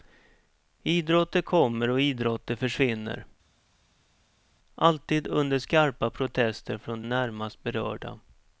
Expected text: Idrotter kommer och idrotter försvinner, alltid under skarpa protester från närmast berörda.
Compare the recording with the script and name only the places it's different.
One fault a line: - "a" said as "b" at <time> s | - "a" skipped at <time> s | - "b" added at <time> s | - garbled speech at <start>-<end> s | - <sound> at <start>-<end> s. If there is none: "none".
none